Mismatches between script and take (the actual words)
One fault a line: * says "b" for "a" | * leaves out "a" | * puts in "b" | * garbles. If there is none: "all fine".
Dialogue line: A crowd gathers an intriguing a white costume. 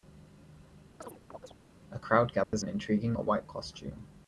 all fine